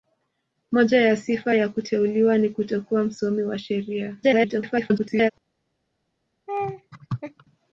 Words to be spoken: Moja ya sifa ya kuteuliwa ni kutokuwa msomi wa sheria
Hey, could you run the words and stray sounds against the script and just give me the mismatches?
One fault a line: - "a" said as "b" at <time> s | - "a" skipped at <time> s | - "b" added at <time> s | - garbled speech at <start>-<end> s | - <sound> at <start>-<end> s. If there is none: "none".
- garbled speech at 4.2-5.3 s
- laugh at 6.5-7.4 s